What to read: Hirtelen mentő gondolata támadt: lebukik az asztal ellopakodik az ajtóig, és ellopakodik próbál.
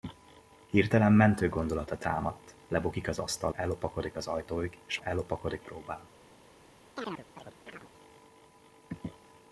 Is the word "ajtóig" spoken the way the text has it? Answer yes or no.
yes